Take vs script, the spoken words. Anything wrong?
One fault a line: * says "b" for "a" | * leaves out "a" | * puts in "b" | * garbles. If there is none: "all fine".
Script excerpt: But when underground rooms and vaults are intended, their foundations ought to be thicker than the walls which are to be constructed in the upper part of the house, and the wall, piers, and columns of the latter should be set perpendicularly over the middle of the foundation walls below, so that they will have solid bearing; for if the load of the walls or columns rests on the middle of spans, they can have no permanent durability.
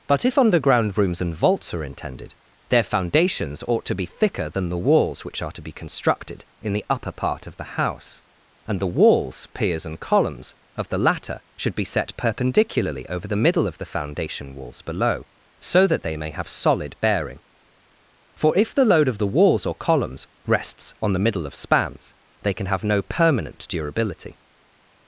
* says "if" for "when"
* says "walls" for "wall"
* says "may" for "will"